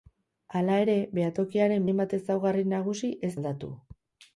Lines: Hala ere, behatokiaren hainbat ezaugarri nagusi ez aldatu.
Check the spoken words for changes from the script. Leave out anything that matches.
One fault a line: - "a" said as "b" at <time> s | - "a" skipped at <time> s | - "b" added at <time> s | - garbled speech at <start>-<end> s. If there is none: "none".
none